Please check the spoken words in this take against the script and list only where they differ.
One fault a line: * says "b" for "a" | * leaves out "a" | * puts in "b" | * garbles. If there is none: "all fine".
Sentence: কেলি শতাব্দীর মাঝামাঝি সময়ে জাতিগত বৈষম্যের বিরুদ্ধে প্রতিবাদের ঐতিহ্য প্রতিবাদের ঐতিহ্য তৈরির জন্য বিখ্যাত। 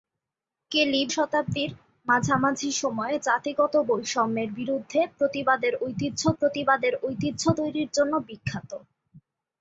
all fine